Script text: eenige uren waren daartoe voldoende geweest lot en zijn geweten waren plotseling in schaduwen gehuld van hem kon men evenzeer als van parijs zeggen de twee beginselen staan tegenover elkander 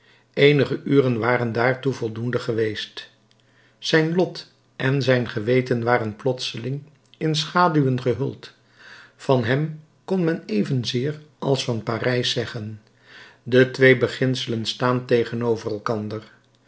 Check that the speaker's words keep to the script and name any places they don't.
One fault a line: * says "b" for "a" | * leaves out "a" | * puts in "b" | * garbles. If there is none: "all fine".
* puts in "zijn"